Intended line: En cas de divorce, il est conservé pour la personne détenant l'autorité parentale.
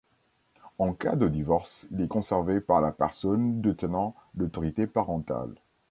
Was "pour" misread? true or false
true